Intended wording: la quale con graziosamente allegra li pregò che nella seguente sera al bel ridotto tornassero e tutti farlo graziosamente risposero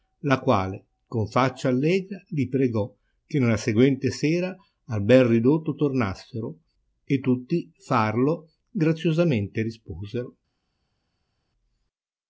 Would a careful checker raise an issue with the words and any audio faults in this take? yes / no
yes